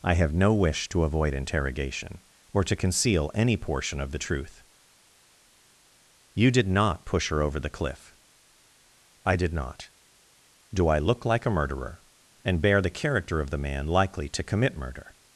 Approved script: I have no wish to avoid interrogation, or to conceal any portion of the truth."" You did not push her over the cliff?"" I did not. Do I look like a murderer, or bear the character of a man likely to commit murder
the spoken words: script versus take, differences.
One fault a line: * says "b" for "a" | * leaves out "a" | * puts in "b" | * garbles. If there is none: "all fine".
* says "and" for "or"
* says "the" for "a"